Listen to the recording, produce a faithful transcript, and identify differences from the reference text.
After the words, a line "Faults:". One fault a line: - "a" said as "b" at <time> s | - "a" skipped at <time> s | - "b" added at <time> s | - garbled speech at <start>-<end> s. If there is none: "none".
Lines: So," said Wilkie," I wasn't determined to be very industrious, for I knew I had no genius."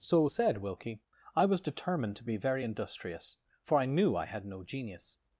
So," said Wilkie," I was determined to be very industrious, for I knew I had no genius."
Faults:
- "wasn't" said as "was" at 1.4 s